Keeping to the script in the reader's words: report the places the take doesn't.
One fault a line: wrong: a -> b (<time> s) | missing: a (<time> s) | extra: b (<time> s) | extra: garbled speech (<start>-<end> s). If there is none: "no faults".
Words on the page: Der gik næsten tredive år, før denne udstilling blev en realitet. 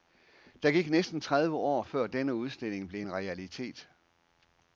no faults